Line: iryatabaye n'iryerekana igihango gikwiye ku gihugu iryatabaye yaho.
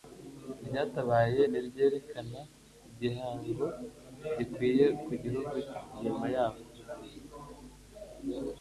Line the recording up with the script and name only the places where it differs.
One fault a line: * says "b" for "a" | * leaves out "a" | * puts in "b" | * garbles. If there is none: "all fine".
* says "nyuma" for "iryatabaye"